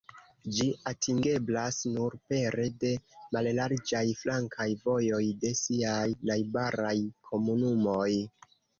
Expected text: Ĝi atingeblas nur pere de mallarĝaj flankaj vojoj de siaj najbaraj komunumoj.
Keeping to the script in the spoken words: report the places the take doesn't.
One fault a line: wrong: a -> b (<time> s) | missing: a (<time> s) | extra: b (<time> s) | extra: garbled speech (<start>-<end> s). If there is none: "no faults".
no faults